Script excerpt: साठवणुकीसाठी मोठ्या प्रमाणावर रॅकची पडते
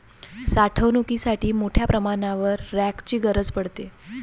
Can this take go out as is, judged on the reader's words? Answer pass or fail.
fail